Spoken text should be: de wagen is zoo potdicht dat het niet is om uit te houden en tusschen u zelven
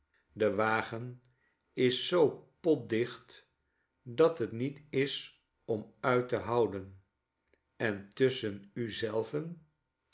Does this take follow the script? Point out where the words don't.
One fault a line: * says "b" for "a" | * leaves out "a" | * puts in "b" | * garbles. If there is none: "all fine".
all fine